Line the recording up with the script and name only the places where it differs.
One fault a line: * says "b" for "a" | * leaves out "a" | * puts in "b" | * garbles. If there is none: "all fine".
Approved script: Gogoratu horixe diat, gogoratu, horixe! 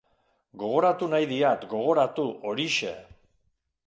* says "nahi" for "horixe"